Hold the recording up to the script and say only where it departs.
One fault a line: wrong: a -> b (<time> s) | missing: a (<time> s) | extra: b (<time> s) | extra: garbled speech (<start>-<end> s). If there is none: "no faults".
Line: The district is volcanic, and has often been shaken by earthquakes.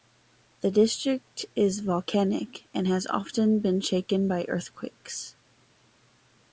no faults